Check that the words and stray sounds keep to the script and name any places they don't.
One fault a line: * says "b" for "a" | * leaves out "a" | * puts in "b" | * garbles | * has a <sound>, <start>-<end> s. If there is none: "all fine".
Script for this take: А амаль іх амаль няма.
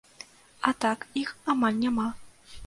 * says "так" for "амаль"